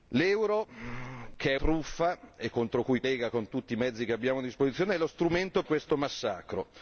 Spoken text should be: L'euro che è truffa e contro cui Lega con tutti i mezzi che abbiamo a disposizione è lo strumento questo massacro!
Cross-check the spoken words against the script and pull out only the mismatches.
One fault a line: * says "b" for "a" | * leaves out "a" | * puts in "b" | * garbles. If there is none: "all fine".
all fine